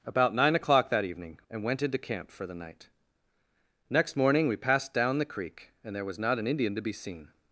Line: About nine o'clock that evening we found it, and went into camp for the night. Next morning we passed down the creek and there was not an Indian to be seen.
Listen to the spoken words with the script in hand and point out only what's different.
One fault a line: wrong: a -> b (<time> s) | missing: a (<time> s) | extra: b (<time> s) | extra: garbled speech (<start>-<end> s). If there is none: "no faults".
missing: we found it (1.4 s)